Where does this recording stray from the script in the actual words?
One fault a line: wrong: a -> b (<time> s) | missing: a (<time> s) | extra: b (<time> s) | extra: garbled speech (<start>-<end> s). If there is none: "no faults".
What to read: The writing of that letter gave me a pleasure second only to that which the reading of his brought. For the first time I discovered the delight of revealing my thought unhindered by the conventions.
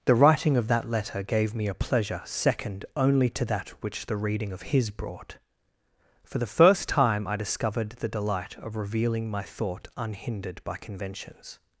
missing: the (10.8 s)